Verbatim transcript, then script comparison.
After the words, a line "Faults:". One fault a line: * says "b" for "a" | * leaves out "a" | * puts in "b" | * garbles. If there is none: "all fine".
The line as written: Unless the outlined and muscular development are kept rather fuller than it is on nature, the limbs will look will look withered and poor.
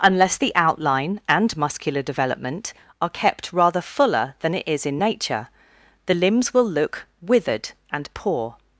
Unless the outline and muscular development are kept rather fuller than it is in nature, the limbs will look withered and poor.
Faults:
* says "outline" for "outlined"
* says "in" for "on"
* leaves out "will look"